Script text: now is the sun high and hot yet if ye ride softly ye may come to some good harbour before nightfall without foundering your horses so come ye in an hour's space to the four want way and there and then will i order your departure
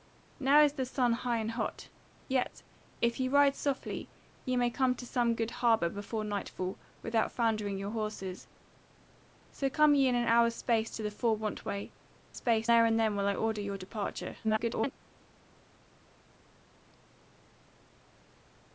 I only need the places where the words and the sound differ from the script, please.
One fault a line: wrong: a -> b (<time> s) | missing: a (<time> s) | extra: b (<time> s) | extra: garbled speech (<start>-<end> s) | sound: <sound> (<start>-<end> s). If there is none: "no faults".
wrong: and -> space (12.3 s)
extra: garbled speech (14.4-14.9 s)